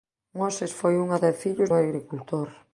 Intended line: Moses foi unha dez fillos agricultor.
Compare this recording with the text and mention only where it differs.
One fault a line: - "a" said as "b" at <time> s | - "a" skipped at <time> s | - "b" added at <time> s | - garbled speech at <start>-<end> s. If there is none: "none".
none